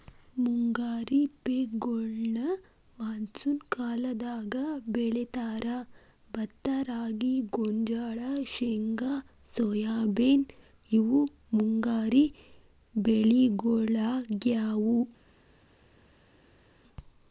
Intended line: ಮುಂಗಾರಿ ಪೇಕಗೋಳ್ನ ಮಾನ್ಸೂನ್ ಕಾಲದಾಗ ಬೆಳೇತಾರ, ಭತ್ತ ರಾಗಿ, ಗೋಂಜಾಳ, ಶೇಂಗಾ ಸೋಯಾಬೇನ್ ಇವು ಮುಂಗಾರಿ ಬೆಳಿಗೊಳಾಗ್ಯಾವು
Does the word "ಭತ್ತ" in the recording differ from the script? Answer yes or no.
no